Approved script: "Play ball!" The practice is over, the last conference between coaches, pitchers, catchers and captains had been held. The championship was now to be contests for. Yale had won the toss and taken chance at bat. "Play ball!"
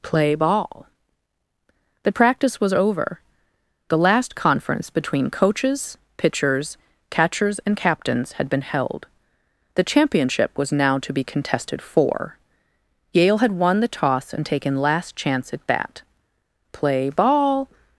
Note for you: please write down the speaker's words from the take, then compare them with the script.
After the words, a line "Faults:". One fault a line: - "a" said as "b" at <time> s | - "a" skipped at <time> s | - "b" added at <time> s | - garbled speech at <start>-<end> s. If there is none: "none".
"Play ball!" The practice was over, the last conference between coaches, pitchers, catchers and captains had been held. The championship was now to be contested for. Yale had won the toss and taken last chance at bat. "Play ball!"
Faults:
- "is" said as "was" at 2.6 s
- "contests" said as "contested" at 11.2 s
- "last" added at 14.8 s